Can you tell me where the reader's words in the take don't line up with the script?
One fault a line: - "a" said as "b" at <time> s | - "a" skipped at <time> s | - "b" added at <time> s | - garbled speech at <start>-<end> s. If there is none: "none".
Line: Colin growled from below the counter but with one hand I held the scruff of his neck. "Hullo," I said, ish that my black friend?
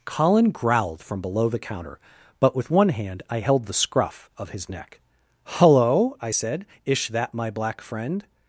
none